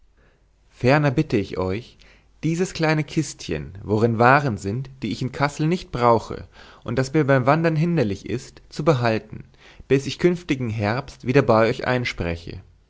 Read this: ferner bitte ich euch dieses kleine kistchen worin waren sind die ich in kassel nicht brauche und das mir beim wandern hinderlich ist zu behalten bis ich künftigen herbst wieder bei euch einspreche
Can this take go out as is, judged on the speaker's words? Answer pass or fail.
pass